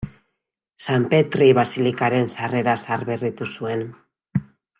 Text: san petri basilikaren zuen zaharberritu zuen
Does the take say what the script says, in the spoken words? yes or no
no